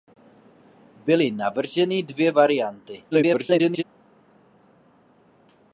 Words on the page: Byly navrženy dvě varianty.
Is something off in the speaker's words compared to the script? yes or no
yes